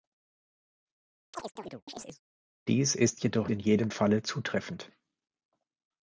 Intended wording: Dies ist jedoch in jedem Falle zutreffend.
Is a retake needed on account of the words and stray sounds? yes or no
yes